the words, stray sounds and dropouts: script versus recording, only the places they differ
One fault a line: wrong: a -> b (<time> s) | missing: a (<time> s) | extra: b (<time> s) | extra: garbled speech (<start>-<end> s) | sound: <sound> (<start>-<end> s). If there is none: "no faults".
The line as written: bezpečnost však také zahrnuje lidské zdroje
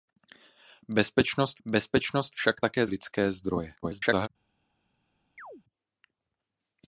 extra: bezpečnost (1.7 s)
missing: zahrnuje (2.9 s)
extra: garbled speech (3.8-4.3 s)
sound: chirp (5.4-5.6 s)